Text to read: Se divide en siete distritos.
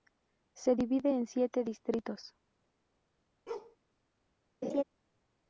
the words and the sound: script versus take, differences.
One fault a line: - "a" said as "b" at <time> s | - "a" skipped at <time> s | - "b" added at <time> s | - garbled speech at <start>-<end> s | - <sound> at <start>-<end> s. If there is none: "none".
- bark at 3.5-3.8 s
- laugh at 4.6-4.8 s